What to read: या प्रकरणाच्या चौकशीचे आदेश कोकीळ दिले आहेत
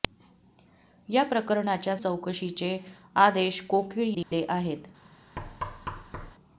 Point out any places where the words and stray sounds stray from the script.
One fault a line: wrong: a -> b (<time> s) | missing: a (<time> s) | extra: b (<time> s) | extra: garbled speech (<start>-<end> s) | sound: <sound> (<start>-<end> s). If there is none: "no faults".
sound: dropout (4.2-4.3 s)
sound: thud (5.4-6.3 s)